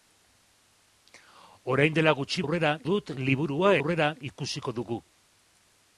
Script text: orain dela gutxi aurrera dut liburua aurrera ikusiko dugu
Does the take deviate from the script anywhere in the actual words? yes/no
no